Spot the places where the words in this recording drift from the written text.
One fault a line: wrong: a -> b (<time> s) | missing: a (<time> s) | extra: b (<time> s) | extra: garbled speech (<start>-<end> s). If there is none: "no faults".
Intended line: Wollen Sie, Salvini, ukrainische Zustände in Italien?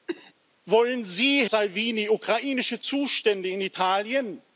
no faults